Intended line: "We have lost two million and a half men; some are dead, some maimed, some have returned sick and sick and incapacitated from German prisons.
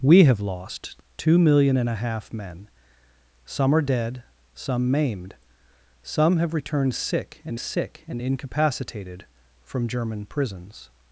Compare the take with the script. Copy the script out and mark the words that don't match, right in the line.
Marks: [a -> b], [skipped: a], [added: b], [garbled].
"We have lost two million and a half men; some are dead, some maimed, some have returned sick and sick and incapacitated from German prisons.